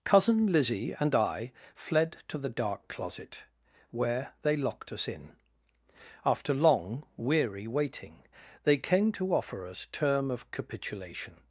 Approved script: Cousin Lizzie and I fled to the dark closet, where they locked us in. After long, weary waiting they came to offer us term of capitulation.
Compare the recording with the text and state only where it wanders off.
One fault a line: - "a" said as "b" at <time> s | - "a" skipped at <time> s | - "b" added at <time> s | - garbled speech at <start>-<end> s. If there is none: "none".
none